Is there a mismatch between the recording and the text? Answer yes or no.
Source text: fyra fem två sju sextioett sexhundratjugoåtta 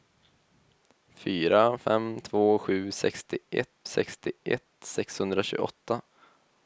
yes